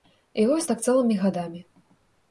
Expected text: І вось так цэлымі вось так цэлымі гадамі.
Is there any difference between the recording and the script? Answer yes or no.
yes